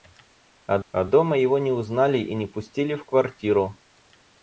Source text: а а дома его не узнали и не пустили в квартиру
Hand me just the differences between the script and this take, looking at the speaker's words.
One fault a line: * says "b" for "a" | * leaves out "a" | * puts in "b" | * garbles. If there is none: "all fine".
all fine